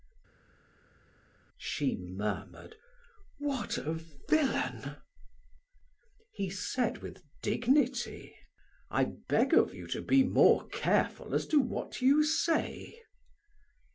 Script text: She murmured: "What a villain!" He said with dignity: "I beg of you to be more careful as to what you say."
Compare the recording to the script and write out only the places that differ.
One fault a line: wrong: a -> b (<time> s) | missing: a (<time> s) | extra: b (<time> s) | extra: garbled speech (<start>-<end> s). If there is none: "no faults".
no faults